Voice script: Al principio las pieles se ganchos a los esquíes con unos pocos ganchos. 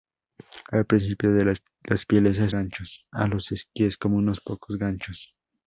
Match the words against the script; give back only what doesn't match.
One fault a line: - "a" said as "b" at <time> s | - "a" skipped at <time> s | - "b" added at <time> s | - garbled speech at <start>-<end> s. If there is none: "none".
none